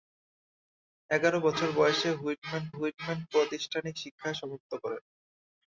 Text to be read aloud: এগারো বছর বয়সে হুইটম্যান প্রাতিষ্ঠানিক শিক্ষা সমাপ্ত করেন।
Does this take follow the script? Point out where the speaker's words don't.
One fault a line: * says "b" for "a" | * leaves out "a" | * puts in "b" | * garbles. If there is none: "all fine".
* puts in "হুইটম্যান"